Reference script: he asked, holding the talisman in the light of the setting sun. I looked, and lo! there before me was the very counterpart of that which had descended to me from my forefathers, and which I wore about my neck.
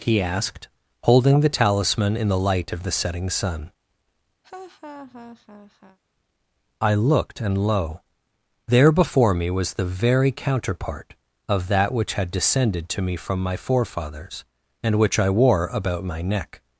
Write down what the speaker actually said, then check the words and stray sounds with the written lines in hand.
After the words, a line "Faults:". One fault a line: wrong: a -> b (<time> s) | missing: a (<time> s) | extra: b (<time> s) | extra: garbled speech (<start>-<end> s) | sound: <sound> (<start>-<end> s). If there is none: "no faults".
he asked, holding the talisman in the light of the setting sun. I looked, and lo! there before me was the very counterpart of that which had descended to me from my forefathers, and which I wore about my neck.
Faults:
sound: laugh (4.4-6.0 s)